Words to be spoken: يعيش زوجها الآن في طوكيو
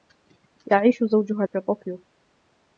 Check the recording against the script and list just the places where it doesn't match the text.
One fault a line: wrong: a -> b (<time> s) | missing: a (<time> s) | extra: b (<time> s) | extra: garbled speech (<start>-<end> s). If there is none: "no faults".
missing: الآن (1.4 s)